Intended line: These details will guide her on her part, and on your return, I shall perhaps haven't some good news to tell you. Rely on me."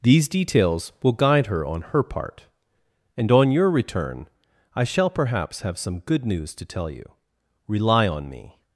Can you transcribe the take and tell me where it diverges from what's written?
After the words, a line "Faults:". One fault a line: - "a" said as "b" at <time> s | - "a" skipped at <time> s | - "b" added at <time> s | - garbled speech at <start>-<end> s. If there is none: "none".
These details will guide her on her part, and on your return, I shall perhaps have some good news to tell you. Rely on me."
Faults:
- "haven't" said as "have" at 5.6 s